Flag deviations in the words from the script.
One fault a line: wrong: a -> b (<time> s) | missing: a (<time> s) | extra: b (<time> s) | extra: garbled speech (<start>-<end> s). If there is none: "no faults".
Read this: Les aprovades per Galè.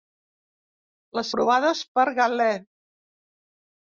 no faults